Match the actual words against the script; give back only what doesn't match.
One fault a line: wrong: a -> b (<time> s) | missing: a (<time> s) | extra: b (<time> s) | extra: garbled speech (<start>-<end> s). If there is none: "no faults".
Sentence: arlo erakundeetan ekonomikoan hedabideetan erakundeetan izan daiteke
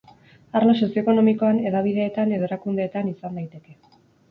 wrong: erakundeetan -> sozio (0.8 s)
extra: edo (2.4 s)